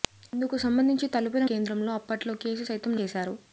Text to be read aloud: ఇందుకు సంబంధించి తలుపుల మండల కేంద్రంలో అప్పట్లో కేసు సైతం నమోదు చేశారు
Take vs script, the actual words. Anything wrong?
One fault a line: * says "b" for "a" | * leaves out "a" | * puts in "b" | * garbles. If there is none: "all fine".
* leaves out "మండల"
* leaves out "నమోదు"